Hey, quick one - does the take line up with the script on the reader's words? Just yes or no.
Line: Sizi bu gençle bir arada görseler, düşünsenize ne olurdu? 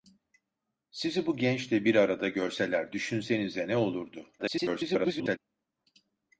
no